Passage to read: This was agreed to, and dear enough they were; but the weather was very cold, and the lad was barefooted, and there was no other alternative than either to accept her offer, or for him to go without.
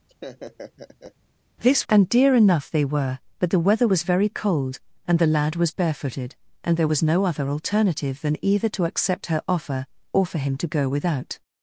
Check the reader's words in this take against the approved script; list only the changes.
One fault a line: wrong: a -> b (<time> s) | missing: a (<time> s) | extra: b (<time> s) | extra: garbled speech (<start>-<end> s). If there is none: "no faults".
missing: was agreed to (1.8 s)